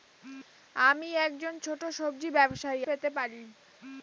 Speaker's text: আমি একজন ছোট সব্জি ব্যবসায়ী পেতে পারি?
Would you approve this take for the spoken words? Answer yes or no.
yes